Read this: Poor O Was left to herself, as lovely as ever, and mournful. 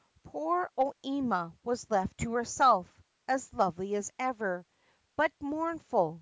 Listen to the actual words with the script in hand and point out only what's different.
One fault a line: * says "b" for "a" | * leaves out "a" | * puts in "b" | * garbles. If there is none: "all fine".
* puts in "Ima"
* says "but" for "and"